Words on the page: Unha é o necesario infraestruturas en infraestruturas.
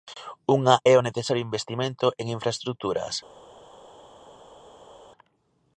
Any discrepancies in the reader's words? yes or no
yes